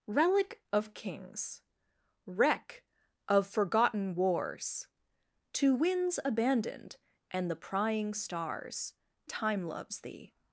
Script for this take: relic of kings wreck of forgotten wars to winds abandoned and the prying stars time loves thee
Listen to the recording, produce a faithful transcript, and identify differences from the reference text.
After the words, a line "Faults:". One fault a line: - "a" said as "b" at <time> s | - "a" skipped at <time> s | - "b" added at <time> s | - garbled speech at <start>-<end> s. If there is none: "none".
relic of kings wreck of forgotten wars to winds abandoned and the prying stars time loves thee
Faults:
none